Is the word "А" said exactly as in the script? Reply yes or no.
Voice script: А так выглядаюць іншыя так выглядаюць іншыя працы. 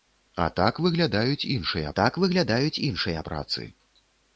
yes